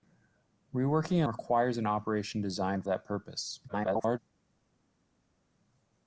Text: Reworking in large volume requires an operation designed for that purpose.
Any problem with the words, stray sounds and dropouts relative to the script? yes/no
yes